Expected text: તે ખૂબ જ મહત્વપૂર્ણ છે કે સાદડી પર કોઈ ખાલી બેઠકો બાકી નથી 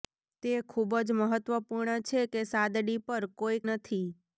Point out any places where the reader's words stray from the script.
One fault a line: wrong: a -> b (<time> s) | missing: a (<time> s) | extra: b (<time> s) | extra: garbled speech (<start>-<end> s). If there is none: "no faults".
missing: ખાલી બેઠકો બાકી (3.6 s)